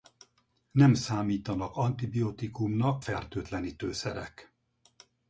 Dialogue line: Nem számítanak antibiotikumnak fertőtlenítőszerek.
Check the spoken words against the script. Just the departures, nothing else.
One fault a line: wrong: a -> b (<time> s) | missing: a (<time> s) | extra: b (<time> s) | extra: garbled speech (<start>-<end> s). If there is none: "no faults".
no faults